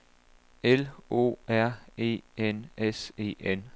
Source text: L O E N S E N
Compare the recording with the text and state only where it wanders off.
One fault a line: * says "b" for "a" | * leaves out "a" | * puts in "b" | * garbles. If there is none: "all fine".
* puts in "R"